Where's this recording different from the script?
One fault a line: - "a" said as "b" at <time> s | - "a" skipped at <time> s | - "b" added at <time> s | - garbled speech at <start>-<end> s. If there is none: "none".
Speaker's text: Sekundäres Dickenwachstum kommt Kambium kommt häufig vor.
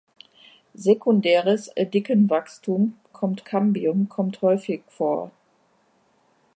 none